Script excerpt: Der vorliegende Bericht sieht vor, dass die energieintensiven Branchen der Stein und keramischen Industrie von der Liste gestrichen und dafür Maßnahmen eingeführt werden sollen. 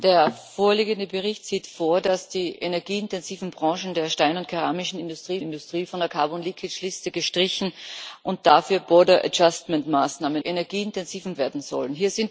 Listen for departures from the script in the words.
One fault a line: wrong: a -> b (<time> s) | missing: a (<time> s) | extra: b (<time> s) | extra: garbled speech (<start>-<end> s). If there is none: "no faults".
extra: Industrie (5.4 s)
wrong: eingeführt -> energieintensiven (10.4 s)